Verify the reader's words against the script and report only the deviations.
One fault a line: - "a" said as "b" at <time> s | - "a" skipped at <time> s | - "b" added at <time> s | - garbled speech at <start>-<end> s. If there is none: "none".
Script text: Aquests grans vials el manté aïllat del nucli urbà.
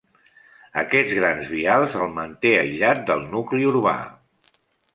none